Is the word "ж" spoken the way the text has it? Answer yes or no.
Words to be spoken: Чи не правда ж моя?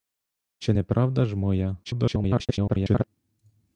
yes